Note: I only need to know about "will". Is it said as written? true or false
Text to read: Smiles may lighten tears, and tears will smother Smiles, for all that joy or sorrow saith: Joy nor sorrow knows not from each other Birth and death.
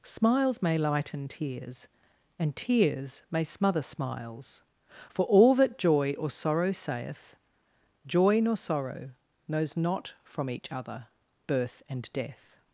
false